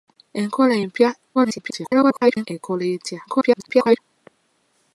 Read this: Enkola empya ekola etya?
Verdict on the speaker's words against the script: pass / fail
fail